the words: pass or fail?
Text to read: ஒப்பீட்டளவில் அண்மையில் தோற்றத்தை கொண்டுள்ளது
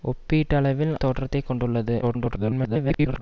fail